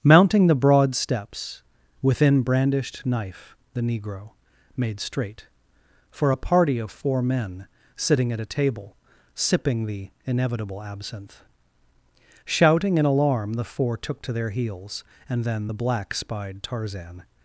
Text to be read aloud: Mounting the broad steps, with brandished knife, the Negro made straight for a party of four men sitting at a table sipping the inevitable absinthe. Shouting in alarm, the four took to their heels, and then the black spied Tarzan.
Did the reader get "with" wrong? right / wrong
wrong